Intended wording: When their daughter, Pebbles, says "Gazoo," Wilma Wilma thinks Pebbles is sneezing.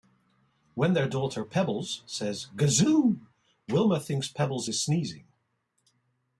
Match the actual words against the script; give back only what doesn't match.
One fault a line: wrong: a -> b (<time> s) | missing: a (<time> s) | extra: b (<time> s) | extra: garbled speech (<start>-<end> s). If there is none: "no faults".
missing: Wilma (4.0 s)